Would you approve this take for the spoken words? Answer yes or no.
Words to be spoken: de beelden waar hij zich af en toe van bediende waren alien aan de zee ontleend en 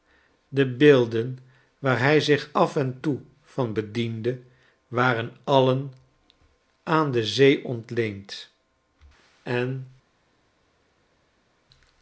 yes